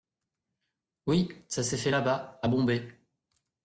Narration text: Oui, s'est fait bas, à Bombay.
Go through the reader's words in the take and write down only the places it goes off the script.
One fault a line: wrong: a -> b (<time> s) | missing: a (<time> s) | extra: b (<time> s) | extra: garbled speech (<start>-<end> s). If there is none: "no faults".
extra: ça (1.5 s)
extra: là (1.9 s)